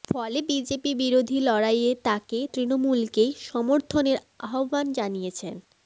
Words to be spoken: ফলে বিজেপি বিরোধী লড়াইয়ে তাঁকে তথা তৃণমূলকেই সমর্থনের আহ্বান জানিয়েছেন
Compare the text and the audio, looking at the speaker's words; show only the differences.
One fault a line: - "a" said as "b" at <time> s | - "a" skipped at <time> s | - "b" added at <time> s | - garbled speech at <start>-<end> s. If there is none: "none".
- "তথা" skipped at 2.4 s